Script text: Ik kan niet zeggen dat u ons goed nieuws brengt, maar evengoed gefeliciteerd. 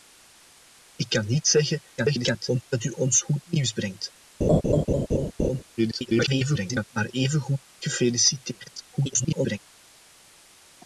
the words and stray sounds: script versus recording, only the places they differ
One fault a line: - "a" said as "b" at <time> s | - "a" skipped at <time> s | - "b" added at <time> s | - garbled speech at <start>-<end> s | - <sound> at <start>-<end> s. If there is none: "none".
- garbled speech at 2.0-2.6 s
- laugh at 4.4-5.6 s
- garbled speech at 5.8-6.8 s
- garbled speech at 8.9-9.6 s